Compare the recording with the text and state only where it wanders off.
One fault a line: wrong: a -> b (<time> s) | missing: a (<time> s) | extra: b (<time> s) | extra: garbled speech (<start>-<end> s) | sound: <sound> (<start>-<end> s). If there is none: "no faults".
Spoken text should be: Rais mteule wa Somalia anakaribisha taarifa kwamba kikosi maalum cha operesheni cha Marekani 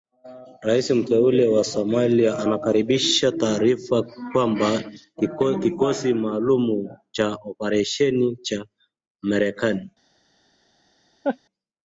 sound: laugh (11.2-11.4 s)